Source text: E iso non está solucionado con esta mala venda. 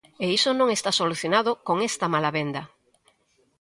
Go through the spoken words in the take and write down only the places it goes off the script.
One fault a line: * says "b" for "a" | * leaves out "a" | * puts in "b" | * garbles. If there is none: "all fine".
all fine